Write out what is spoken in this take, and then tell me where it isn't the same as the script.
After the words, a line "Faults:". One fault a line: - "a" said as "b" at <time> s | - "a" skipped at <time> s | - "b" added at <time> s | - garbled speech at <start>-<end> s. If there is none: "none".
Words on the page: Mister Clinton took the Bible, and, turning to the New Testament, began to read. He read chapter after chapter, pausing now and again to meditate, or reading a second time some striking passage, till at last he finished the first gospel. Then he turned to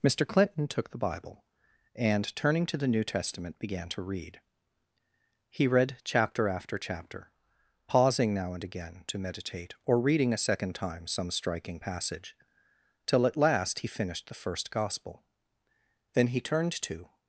Mister Clinton took the Bible, and, turning to the New Testament, began to read. He read chapter after chapter, pausing now and again to meditate, or reading a second time some striking passage, till at last he finished the first gospel. Then he turned to
Faults:
none